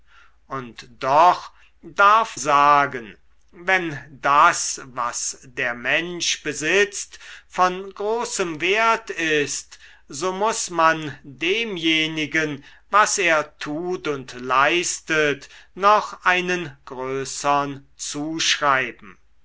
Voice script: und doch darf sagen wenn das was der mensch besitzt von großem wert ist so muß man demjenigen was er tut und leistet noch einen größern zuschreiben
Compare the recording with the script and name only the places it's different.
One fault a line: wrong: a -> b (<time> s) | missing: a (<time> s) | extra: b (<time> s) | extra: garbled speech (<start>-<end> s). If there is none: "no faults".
no faults